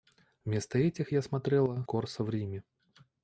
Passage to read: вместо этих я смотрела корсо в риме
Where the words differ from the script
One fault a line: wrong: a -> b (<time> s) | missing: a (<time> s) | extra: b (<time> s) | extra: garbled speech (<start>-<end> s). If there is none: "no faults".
no faults